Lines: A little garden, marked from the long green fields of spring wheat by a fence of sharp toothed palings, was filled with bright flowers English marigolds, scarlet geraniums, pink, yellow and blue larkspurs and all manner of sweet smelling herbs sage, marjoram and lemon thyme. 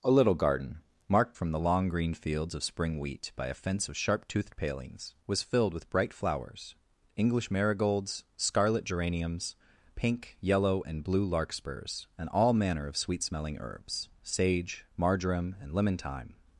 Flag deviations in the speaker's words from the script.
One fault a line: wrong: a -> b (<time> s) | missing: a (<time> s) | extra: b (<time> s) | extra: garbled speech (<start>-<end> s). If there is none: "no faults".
no faults